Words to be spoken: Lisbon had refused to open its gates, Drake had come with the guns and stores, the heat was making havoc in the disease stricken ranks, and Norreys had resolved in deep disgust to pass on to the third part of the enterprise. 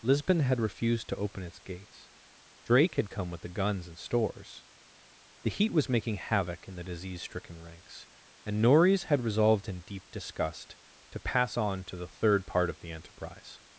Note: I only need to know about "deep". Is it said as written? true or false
true